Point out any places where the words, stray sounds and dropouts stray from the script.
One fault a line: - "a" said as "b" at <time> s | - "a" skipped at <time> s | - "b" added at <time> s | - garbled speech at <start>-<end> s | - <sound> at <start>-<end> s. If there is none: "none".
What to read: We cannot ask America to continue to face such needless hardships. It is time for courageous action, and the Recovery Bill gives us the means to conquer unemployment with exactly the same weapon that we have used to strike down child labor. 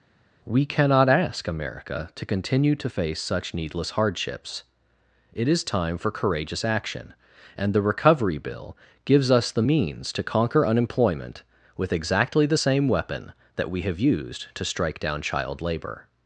none